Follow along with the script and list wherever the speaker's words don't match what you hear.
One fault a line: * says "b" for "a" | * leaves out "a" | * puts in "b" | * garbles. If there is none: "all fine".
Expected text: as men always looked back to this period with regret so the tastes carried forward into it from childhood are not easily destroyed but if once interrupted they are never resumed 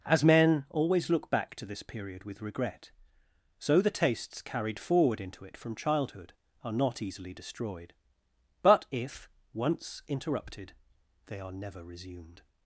* says "look" for "looked"